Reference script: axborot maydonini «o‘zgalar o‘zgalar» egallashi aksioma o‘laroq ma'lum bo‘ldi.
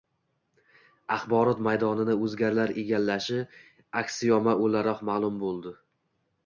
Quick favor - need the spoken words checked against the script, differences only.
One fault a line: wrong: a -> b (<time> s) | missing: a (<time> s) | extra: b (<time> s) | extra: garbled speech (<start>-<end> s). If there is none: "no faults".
missing: o‘zgalar (2.7 s)